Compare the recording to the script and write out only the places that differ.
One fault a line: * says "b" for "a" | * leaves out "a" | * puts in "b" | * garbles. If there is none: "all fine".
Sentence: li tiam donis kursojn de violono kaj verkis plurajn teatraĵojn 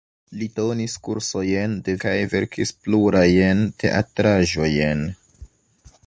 * leaves out "tiam"
* leaves out "violono"